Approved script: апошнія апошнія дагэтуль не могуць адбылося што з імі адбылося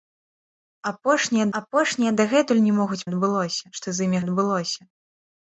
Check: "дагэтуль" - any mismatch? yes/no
no